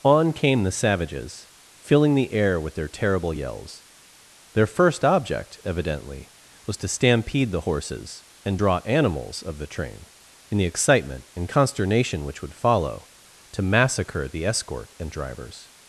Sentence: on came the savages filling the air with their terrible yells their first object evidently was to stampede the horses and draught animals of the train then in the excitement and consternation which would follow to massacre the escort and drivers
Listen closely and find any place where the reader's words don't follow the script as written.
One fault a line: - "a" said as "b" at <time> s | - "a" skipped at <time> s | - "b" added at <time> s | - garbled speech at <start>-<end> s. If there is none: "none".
- "draught" said as "draw" at 8.5 s
- "then" skipped at 10.0 s